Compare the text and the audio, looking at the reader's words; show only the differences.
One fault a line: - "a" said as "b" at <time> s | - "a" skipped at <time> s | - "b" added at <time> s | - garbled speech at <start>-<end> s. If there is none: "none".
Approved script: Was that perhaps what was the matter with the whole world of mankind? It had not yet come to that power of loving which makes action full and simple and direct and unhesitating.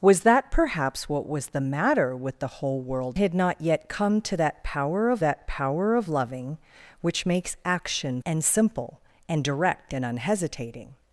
- "of mankind It" skipped at 3.2 s
- "that power of" added at 5.2 s
- "full" skipped at 8.2 s